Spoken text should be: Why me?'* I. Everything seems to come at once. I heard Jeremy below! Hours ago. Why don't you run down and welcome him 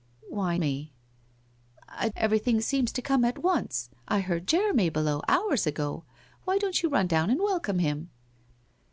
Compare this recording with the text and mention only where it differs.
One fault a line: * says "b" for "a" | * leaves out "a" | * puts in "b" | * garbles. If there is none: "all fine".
all fine